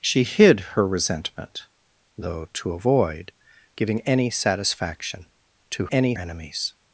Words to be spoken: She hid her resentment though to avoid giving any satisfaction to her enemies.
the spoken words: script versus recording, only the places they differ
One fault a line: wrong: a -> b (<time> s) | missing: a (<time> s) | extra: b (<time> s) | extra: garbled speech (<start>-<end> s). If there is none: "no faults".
wrong: her -> any (5.9 s)